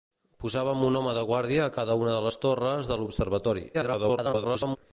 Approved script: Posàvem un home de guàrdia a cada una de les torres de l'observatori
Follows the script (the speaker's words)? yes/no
no